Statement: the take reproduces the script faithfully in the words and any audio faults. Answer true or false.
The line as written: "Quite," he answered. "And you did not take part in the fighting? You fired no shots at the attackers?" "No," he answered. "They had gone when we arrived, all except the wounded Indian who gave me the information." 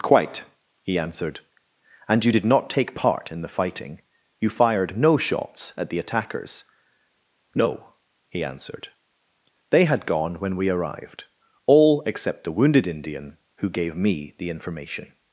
true